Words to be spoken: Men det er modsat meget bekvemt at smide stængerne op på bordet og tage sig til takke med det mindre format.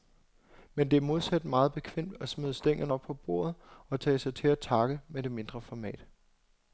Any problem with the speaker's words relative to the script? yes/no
no